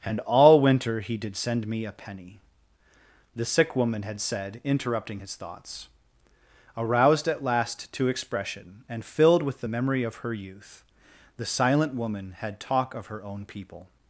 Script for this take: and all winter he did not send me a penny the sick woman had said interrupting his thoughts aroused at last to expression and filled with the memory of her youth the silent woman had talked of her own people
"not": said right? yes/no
no